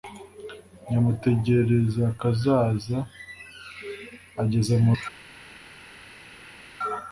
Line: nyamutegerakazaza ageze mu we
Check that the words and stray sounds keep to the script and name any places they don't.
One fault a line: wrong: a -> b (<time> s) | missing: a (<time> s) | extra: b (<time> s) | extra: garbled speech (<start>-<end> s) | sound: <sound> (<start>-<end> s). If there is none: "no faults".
no faults